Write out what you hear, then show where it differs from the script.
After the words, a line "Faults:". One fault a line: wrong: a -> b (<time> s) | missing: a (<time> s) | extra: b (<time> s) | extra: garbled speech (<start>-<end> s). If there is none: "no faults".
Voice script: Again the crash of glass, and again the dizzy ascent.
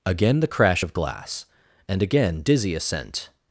Again the crash of glass, and again dizzy ascent.
Faults:
missing: the (2.4 s)